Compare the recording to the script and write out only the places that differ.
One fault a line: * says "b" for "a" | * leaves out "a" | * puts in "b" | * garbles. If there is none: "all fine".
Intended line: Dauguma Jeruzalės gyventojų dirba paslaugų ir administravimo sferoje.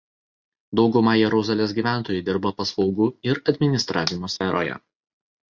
all fine